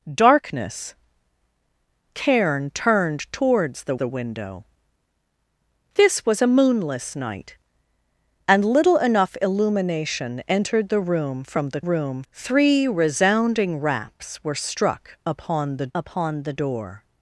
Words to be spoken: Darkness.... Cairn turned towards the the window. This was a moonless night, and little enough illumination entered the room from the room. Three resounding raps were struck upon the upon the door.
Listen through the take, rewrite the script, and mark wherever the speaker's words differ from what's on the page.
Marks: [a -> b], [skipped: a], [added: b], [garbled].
Darkness.... Cairn turned towards the the window. This was a moonless night, and little enough illumination entered the room from the room. Three resounding raps were struck upon the upon the door.